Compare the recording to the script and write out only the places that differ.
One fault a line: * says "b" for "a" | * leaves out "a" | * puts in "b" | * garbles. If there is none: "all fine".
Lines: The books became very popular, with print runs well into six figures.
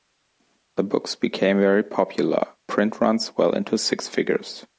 * leaves out "with"